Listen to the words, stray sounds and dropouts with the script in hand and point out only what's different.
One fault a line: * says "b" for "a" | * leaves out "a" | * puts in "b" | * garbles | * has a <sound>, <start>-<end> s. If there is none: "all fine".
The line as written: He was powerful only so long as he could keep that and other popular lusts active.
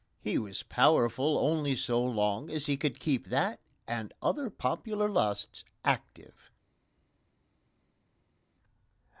all fine